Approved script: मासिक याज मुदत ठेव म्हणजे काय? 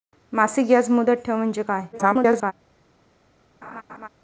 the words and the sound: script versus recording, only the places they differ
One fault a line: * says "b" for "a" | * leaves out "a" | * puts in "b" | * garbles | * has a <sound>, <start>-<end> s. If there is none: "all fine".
* garbles
* has a laugh, 3.6-4.1 s